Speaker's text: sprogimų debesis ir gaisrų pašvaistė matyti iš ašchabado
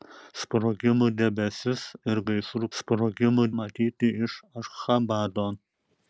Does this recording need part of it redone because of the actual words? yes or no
yes